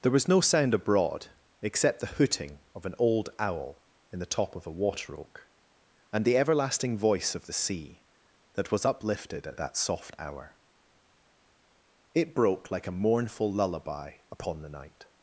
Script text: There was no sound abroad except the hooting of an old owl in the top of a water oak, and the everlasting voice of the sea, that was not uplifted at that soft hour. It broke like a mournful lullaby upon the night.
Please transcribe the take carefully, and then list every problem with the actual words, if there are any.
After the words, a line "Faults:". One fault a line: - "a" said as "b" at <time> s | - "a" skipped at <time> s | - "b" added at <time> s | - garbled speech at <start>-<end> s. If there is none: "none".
There was no sound abroad except the hooting of an old owl in the top of a water oak, and the everlasting voice of the sea, that was uplifted at that soft hour. It broke like a mournful lullaby upon the night.
Faults:
- "not" skipped at 8.8 s